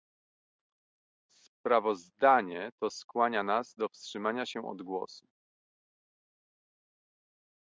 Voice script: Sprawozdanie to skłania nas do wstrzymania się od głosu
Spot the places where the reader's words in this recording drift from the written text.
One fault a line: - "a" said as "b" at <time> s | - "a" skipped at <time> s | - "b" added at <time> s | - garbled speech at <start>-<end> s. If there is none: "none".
none